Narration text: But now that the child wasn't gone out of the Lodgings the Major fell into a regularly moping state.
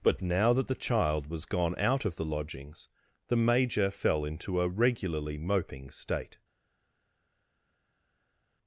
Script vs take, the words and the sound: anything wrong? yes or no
yes